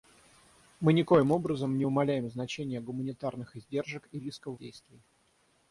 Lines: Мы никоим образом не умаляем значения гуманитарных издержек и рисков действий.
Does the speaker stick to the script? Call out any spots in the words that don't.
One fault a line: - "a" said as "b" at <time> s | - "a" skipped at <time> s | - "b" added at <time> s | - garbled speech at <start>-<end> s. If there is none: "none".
none